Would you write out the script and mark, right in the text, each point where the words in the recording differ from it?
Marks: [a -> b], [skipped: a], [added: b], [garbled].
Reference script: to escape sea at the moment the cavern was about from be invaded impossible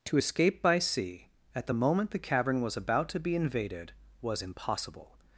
to escape [added: by] sea at the moment the cavern was about [from -> to] be invaded [added: was] impossible